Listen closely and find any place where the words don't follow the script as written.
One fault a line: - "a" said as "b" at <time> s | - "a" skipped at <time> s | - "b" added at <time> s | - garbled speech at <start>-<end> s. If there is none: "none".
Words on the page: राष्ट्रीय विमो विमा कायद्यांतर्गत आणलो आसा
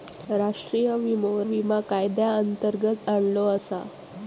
none